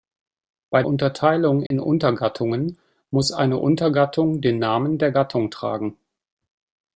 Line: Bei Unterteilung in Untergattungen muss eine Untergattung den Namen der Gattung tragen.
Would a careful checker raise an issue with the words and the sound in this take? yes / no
yes